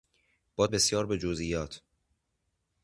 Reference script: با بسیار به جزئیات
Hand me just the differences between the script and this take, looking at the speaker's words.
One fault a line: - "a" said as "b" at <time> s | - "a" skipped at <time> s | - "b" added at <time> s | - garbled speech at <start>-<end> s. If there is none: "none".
none